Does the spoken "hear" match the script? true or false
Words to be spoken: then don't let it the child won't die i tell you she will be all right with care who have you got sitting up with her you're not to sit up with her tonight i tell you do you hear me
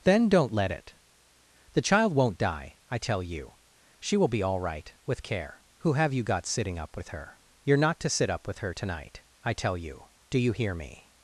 true